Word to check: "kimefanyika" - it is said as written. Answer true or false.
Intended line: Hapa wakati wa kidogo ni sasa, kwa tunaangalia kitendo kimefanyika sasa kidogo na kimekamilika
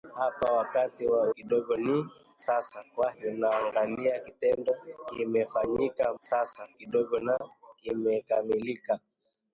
true